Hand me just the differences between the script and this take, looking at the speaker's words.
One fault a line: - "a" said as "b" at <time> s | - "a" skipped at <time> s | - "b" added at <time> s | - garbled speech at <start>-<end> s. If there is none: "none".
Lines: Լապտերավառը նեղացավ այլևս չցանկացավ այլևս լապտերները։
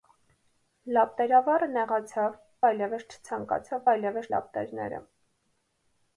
none